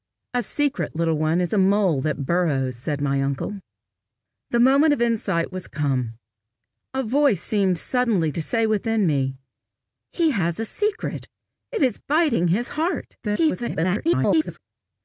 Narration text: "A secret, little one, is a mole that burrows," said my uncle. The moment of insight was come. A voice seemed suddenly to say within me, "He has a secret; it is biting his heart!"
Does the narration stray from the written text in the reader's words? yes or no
yes